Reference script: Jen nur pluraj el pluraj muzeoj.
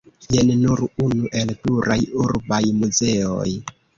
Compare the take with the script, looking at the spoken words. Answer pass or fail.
fail